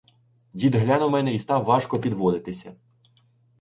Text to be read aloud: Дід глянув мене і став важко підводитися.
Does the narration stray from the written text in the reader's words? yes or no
no